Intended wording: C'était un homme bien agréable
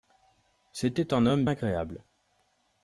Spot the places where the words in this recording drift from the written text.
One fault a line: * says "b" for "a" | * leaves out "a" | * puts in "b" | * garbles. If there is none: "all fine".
* leaves out "bien"